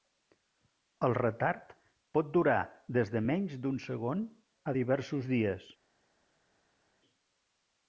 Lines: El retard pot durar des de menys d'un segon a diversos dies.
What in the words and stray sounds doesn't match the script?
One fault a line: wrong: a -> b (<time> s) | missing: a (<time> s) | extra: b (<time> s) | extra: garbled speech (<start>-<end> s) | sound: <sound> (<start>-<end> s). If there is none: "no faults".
no faults